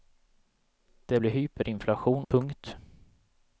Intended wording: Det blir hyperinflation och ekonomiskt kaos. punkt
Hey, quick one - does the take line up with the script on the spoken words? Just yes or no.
no